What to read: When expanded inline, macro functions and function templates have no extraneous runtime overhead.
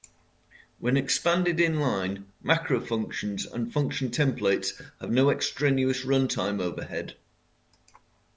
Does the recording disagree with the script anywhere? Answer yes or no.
no